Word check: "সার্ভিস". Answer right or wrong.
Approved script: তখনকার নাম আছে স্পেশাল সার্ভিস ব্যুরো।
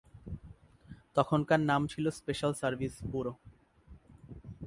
right